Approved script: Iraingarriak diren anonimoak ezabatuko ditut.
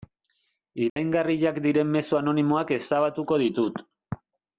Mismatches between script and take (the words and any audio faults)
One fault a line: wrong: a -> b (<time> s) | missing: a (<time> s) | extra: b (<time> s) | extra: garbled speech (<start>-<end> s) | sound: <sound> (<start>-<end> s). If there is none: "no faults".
sound: dropout (0.9-1.0 s)
extra: mezu (2.0 s)